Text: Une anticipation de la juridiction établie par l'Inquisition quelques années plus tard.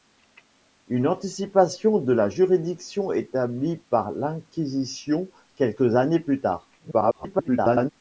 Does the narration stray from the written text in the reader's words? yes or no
yes